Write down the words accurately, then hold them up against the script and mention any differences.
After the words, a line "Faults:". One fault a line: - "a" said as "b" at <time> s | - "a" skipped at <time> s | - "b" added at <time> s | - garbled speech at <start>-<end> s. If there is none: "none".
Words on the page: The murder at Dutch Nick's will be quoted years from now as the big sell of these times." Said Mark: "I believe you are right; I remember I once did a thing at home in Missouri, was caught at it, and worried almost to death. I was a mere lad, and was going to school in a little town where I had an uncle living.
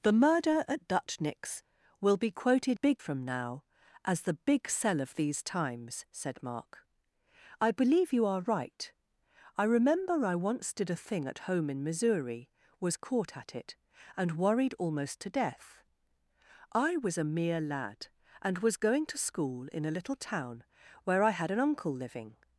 The murder at Dutch Nick's will be quoted big from now as the big sell of these times." Said Mark: "I believe you are right; I remember I once did a thing at home in Missouri, was caught at it, and worried almost to death. I was a mere lad, and was going to school in a little town where I had an uncle living.
Faults:
- "years" said as "big" at 2.7 s